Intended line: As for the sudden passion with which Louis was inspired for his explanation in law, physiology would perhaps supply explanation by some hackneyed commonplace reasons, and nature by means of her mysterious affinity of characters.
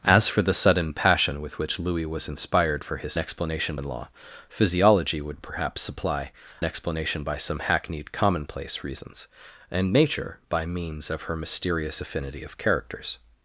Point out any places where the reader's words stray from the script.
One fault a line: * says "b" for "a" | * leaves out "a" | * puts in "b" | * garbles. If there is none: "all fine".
all fine